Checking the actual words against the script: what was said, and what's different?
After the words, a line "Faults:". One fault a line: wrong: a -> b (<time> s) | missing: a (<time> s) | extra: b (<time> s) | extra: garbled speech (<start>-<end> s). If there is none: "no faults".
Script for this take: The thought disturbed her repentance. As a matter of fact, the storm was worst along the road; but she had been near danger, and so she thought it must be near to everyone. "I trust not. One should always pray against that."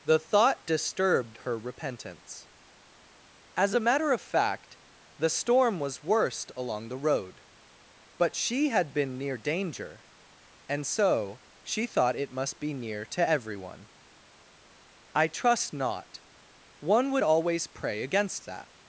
The thought disturbed her repentance. As a matter of fact, the storm was worst along the road; but she had been near danger, and so she thought it must be near to everyone. "I trust not. One would always pray against that."
Faults:
wrong: should -> would (17.1 s)